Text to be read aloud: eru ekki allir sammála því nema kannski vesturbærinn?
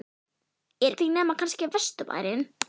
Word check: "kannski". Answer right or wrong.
right